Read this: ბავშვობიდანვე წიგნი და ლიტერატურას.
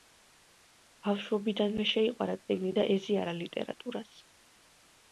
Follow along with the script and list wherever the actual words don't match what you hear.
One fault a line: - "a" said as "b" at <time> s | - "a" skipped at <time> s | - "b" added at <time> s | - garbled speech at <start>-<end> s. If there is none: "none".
- "შეიყვარა" added at 1.9 s
- "ეზიარა" added at 3.0 s